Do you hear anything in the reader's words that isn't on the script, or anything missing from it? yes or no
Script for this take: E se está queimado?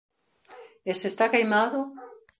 no